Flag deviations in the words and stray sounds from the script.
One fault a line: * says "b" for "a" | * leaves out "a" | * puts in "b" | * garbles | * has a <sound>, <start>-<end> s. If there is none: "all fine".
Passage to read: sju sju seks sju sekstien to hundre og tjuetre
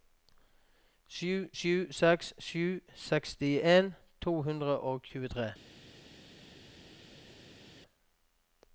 all fine